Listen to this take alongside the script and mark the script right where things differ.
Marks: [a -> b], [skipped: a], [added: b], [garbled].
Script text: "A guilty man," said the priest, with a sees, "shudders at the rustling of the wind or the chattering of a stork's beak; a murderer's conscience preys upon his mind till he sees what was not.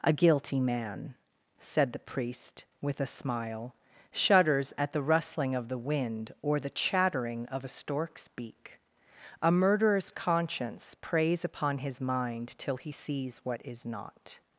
"A guilty man," said the priest, with a [sees, -> smile] "shudders at the rustling of the wind or the chattering of a stork's beak; a murderer's conscience preys upon his mind till he sees what [was -> is] not.